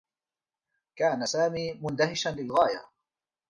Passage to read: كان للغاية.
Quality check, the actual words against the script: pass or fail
fail